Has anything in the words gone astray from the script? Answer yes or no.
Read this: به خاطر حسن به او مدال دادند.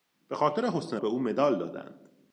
no